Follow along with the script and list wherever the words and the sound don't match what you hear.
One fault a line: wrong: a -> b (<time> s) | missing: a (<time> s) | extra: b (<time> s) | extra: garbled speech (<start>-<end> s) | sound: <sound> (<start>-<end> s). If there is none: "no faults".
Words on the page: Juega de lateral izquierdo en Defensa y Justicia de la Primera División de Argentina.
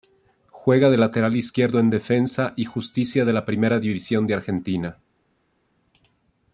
no faults